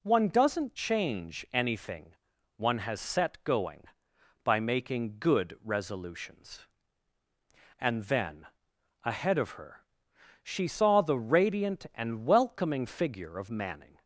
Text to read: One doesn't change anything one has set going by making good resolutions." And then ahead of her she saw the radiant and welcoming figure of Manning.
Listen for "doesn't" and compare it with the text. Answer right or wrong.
right